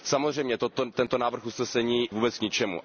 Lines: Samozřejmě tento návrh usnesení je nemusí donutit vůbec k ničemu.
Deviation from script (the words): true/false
true